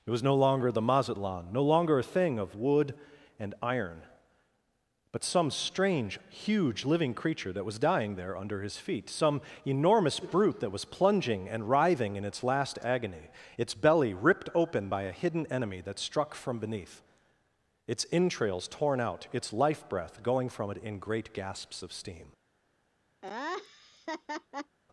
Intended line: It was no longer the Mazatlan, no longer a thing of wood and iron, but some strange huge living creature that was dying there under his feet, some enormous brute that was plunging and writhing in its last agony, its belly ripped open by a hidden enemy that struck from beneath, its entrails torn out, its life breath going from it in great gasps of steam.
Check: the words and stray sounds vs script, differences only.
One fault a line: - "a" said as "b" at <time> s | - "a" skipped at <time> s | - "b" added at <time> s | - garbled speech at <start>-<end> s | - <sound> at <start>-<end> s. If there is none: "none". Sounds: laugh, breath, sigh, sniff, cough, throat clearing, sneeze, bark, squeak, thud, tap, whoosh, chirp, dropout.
- laugh at 23.2-24.8 s